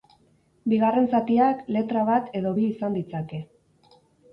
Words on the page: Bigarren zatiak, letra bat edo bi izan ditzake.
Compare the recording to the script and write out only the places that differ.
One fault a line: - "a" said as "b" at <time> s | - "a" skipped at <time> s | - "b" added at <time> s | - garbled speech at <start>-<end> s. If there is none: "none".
none